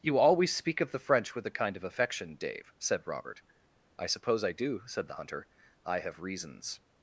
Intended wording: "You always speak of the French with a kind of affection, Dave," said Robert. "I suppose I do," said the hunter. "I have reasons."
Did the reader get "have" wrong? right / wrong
right